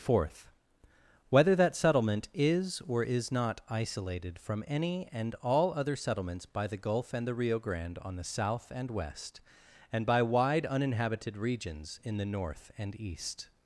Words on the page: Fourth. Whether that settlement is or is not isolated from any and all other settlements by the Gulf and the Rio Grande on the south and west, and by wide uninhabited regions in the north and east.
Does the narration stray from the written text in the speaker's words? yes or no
no